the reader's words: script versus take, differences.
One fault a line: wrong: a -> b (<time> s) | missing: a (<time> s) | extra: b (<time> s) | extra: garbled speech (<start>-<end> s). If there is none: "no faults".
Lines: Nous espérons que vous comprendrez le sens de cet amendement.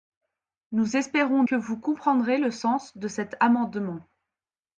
no faults